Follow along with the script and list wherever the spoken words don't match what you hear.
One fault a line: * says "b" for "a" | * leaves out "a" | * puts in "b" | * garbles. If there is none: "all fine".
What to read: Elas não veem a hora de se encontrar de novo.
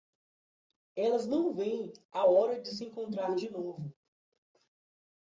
all fine